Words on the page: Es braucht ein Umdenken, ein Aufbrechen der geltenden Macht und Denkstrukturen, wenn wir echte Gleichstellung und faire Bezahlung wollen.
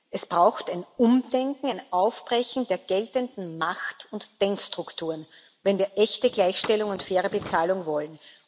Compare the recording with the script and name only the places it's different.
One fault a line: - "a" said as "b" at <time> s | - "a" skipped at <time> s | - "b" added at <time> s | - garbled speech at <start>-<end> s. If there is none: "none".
none